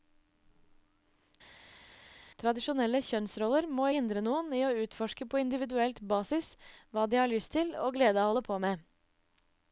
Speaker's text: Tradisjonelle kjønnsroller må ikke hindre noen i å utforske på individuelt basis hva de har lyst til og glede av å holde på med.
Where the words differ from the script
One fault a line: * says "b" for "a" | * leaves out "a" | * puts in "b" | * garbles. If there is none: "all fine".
* leaves out "ikke"